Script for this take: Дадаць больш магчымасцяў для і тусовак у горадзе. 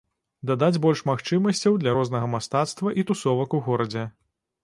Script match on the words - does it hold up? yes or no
no